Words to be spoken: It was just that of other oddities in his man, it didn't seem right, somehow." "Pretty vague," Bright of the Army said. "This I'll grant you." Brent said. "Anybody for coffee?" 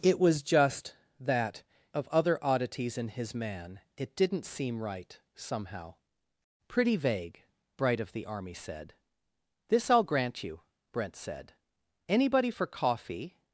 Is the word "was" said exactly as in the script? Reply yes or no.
yes